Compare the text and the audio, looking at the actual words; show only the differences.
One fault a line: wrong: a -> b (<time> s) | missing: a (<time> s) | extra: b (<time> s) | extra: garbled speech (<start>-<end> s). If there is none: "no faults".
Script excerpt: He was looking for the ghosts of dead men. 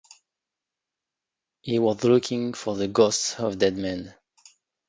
no faults